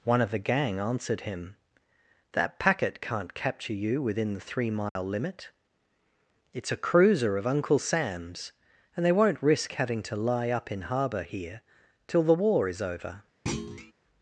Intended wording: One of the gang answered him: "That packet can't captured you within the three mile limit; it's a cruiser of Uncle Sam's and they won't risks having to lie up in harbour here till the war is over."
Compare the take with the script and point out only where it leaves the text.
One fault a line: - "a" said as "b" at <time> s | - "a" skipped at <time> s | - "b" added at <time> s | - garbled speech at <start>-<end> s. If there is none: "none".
- "captured" said as "capture" at 3.4 s
- "risks" said as "risk" at 9.4 s